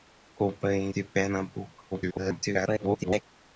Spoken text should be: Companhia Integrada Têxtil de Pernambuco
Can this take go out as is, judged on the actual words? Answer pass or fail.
fail